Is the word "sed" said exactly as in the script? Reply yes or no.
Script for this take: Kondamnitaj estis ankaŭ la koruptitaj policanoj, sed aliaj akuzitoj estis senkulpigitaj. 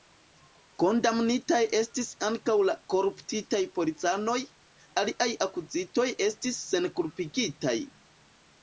no